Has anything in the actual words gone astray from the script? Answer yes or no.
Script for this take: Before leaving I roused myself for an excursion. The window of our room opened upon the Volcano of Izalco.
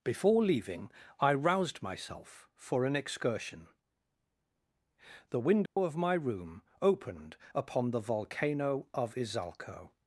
yes